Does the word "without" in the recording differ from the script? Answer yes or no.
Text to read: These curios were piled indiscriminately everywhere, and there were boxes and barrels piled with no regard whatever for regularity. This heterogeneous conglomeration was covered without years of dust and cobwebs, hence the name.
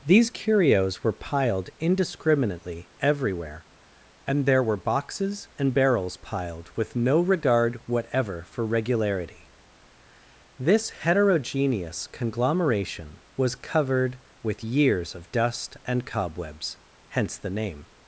yes